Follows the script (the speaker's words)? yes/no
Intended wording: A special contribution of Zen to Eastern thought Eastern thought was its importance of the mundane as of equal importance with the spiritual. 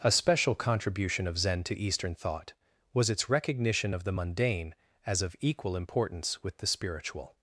no